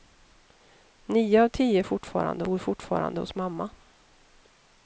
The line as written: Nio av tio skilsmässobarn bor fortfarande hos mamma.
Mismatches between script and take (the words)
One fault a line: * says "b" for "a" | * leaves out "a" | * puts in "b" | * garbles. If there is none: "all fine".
* says "fortfarande" for "skilsmässobarn"